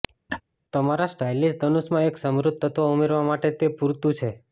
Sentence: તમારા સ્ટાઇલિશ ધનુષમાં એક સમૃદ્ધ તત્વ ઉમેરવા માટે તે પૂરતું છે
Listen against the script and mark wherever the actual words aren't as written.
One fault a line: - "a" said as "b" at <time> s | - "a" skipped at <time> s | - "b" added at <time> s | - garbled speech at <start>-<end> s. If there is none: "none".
none